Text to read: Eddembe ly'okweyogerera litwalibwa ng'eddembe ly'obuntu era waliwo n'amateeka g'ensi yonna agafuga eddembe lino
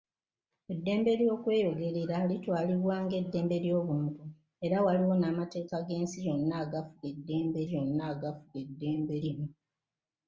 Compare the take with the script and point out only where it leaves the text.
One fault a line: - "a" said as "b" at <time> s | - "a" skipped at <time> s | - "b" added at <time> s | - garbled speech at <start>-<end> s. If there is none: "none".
- "yonna agafuga eddembe" added at 7.7 s